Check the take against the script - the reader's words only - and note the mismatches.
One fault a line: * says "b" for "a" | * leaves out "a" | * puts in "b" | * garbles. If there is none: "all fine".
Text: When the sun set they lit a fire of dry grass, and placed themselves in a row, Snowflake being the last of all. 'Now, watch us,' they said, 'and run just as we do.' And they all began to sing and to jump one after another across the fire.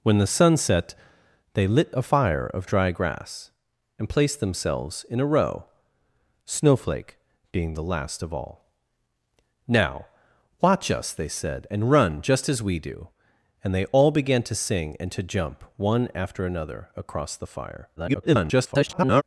* garbles